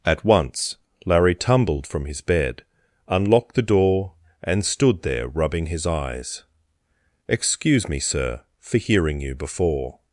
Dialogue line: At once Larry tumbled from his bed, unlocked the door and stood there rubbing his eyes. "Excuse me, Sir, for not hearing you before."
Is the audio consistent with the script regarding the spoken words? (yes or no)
no